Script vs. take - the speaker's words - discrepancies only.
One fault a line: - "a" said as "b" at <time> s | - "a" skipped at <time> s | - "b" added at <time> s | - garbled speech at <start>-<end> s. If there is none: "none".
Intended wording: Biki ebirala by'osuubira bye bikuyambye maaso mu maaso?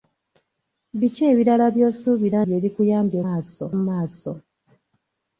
none